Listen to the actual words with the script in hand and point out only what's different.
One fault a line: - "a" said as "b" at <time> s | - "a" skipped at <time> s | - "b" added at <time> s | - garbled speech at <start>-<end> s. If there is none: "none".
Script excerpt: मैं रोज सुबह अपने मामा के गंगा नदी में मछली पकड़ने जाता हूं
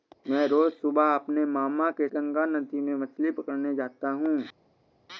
none